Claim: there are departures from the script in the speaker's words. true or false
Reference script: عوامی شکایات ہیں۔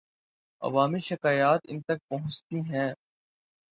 true